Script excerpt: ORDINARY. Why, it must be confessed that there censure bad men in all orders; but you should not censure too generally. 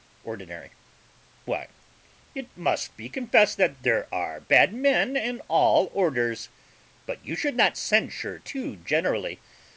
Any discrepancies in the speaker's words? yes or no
yes